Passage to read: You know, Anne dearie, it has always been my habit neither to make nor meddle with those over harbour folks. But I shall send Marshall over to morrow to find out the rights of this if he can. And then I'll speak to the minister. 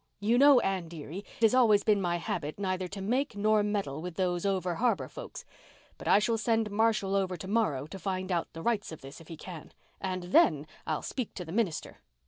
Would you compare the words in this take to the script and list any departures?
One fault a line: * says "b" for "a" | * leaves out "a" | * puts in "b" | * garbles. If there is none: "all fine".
* leaves out "it"